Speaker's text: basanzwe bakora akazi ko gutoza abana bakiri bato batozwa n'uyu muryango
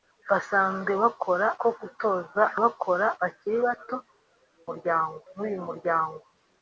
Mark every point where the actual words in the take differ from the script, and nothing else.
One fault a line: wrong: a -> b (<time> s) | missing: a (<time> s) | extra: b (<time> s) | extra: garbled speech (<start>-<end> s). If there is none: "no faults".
missing: akazi (1.5 s)
wrong: abana -> bakora (2.6 s)
wrong: batozwa -> muryango (4.7 s)